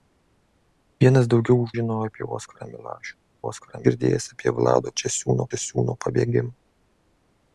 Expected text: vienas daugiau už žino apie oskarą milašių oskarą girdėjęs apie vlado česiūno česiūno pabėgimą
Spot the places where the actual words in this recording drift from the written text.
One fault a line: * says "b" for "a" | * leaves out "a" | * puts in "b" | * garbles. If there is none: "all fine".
all fine